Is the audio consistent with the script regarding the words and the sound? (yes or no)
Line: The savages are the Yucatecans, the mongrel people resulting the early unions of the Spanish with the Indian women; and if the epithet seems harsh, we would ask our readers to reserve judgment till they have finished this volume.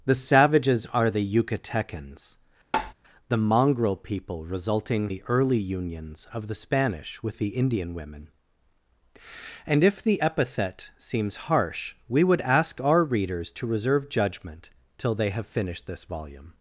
no